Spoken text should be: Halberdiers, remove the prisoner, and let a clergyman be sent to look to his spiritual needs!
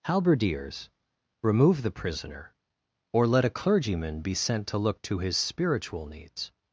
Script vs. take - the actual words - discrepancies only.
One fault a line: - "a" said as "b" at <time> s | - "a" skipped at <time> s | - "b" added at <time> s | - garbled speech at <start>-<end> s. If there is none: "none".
- "and" said as "or" at 3.1 s